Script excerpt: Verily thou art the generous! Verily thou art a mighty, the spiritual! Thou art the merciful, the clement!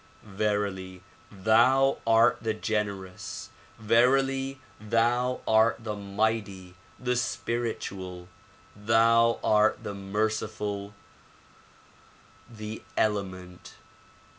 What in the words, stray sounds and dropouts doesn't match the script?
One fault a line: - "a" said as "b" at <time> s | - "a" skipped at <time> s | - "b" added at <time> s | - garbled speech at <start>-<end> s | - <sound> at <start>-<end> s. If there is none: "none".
- "a" said as "the" at 5.8 s